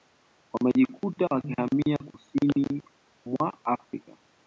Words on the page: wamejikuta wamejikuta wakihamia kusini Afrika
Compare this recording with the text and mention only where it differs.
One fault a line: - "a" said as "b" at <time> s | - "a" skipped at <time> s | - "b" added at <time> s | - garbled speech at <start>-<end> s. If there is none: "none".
- "wamejikuta" skipped at 1.3 s
- "mwa" added at 3.2 s